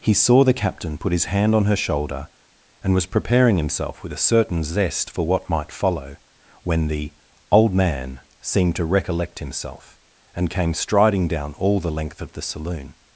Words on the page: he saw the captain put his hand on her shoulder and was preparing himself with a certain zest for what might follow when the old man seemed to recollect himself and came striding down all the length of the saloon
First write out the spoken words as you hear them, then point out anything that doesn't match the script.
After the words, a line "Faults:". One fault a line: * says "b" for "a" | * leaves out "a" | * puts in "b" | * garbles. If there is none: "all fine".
he saw the captain put his hand on her shoulder and was preparing himself with a certain zest for what might follow when the old man seemed to recollect himself and came striding down all the length of the saloon
Faults:
all fine